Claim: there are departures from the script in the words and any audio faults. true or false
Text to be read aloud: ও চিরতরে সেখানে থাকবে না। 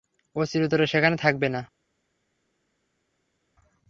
false